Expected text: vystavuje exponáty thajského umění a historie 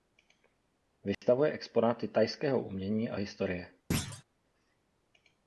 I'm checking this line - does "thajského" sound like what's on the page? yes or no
yes